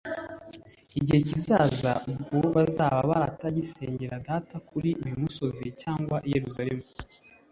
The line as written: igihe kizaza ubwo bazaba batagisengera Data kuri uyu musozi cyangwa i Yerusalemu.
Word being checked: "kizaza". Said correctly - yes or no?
yes